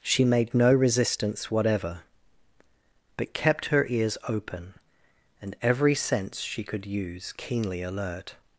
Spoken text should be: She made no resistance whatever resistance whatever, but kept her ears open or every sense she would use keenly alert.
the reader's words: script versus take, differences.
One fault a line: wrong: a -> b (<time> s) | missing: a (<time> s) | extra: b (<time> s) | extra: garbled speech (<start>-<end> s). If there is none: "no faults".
missing: resistance whatever (2.0 s)
wrong: or -> and (5.4 s)
wrong: would -> could (6.6 s)